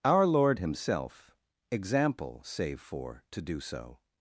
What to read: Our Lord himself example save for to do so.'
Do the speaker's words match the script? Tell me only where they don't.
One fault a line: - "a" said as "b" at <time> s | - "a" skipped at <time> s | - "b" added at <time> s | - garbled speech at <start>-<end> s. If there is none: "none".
none